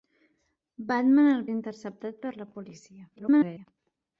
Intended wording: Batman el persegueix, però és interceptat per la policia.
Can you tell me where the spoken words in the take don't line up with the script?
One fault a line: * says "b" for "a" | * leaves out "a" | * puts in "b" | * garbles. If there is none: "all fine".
* leaves out "persegueix però"
* garbles